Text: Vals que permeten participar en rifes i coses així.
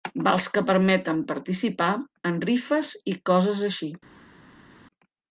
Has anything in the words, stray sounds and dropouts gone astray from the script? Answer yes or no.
no